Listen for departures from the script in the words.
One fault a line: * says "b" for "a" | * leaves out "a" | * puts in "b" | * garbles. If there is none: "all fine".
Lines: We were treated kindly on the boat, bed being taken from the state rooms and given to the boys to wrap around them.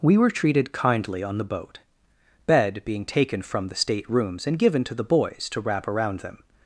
all fine